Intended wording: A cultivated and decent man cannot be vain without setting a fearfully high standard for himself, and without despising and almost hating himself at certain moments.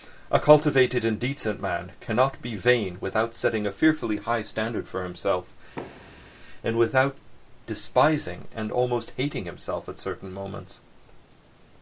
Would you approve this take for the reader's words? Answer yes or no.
yes